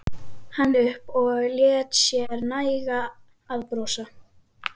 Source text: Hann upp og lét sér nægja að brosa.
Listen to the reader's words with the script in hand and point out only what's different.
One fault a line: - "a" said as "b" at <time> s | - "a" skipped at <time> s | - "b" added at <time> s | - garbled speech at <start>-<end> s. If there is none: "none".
none